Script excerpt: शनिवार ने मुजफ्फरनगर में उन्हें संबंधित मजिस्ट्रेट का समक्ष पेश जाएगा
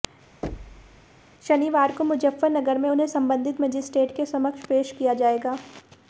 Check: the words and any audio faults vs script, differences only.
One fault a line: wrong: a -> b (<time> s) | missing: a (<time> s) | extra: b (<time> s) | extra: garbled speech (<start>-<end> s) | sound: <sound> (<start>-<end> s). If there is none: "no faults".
sound: thud (0.4-1.1 s)
wrong: ने -> को (1.9 s)
wrong: का -> के (4.2 s)
extra: किया (5.0 s)